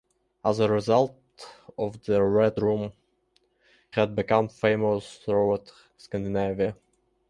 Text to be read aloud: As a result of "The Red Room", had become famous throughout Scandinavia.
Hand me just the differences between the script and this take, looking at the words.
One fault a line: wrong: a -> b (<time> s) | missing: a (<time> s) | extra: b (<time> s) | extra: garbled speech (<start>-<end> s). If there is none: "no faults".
no faults